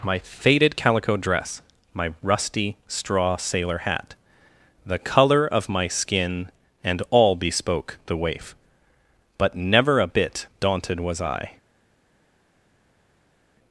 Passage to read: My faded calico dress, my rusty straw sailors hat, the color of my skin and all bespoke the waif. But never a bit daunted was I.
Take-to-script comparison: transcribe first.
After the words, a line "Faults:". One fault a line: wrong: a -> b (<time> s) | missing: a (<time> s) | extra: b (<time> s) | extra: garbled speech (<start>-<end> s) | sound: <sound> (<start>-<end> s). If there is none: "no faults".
My faded calico dress, my rusty straw sailor hat, the color of my skin and all bespoke the waif. But never a bit daunted was I.
Faults:
wrong: sailors -> sailor (3.4 s)